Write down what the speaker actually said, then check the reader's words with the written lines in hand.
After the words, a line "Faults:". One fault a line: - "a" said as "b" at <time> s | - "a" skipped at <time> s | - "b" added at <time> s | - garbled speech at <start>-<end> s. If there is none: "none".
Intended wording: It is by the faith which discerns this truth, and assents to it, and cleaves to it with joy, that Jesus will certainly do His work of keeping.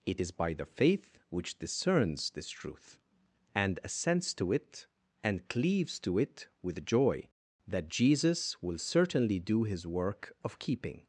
It is by the faith which discerns this truth, and assents to it, and cleaves to it with joy, that Jesus will certainly do His work of keeping.
Faults:
none